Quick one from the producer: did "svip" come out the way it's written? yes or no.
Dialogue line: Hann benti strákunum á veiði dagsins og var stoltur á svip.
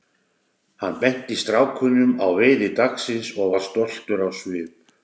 yes